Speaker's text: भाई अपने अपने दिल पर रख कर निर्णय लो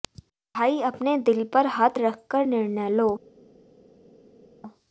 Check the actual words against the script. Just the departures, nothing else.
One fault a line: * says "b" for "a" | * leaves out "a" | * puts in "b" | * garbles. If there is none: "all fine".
* leaves out "अपने"
* puts in "हाथ"